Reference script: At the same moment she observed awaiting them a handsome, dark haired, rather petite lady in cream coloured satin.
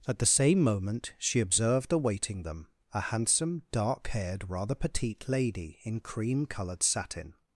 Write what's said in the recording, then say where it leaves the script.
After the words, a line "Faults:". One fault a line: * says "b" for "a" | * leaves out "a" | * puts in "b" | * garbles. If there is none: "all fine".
At the same moment she observed awaiting them a handsome, dark haired, rather petite lady in cream coloured satin.
Faults:
all fine